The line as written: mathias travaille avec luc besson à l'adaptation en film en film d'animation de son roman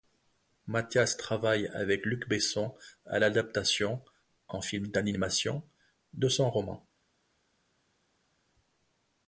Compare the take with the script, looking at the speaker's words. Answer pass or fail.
fail